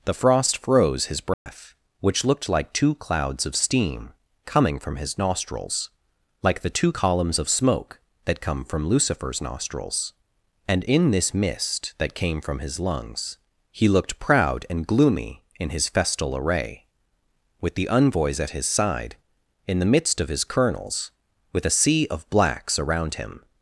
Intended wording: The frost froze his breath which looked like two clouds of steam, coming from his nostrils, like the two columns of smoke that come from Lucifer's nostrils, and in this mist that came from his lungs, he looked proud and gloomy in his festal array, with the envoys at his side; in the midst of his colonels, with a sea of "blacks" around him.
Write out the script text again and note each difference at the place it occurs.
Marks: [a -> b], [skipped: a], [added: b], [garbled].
The frost froze his breath which looked like two clouds of steam, coming from his nostrils, like the two columns of smoke that come from Lucifer's nostrils, and in this mist that came from his lungs, he looked proud and gloomy in his festal array, with the envoys at his side; in the midst of his colonels, with a sea of "blacks" around him.